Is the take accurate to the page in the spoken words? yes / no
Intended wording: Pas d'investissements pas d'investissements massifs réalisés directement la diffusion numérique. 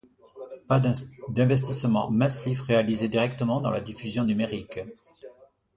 no